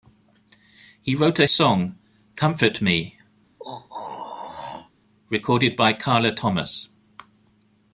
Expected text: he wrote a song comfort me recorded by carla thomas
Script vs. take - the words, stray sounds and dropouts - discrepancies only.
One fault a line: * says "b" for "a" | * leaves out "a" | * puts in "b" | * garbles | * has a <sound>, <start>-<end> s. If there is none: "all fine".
* has a throat clearing, 3.6-4.9 s